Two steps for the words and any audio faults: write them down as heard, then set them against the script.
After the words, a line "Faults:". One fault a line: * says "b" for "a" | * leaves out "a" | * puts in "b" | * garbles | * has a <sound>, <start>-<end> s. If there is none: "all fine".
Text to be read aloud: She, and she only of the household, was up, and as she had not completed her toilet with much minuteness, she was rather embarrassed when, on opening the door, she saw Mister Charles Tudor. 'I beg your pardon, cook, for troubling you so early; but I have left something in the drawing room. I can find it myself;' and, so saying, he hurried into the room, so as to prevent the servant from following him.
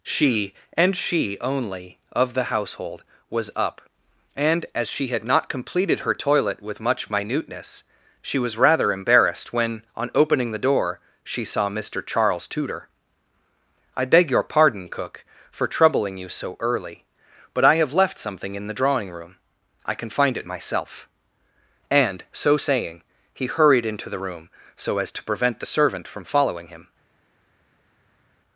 She, and she only of the household, was up, and as she had not completed her toilet with much minuteness, she was rather embarrassed when, on opening the door, she saw Mister Charles Tudor. 'I beg your pardon, cook, for troubling you so early; but I have left something in the drawing room. I can find it myself;' and, so saying, he hurried into the room, so as to prevent the servant from following him.
Faults:
all fine